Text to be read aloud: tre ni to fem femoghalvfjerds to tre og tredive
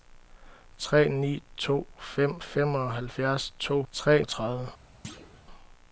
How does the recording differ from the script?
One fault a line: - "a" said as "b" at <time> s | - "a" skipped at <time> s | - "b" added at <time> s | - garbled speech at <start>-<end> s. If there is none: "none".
none